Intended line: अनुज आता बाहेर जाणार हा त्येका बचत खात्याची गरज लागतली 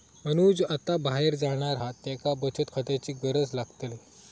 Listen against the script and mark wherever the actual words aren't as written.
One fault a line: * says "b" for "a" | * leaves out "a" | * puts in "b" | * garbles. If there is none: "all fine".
all fine